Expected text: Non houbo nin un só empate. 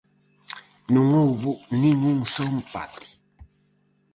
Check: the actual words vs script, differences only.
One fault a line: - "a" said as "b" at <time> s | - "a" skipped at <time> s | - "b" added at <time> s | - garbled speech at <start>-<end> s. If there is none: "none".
none